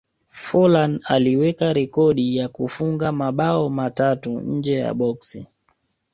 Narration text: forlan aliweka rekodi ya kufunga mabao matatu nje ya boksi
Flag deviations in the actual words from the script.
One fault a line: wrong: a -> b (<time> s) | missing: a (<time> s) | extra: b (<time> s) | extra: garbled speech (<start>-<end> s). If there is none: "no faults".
no faults